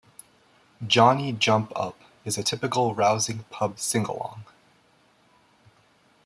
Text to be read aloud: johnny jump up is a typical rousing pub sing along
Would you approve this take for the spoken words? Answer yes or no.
yes